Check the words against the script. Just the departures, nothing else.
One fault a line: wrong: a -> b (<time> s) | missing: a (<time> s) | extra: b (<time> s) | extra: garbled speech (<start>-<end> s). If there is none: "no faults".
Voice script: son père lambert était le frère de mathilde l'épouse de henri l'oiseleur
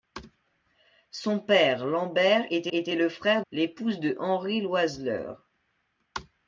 extra: était (2.7 s)
missing: de mathilde (3.4 s)